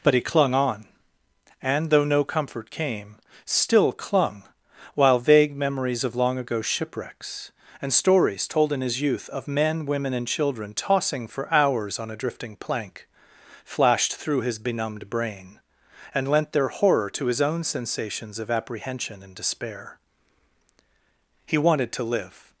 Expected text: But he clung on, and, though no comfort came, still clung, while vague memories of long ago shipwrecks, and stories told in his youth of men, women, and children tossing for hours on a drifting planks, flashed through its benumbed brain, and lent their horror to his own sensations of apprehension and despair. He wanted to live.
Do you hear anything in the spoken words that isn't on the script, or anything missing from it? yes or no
yes